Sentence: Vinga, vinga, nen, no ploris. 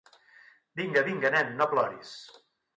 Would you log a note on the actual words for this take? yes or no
no